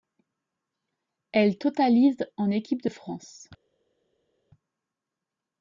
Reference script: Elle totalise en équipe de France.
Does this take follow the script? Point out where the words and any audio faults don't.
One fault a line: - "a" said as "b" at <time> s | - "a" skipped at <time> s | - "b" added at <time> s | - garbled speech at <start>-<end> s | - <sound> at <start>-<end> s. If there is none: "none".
none